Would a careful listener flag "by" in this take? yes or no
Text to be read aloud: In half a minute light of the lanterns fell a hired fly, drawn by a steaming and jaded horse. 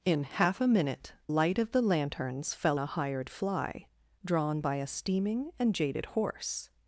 no